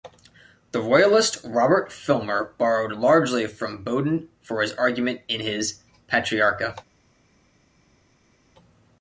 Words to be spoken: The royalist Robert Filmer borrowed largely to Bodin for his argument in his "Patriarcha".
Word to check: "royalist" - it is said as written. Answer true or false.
true